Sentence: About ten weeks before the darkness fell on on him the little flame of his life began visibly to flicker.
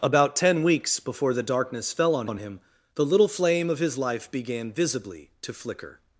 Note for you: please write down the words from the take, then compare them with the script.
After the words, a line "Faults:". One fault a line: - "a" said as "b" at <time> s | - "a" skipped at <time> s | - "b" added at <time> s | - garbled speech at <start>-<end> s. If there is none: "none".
About ten weeks before the darkness fell on on him the little flame of his life began visibly to flicker.
Faults:
none